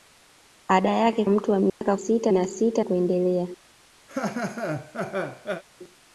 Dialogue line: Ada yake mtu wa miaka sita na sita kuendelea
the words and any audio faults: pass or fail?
fail